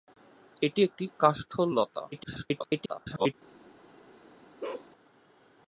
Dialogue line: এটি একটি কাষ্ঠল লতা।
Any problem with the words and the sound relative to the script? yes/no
yes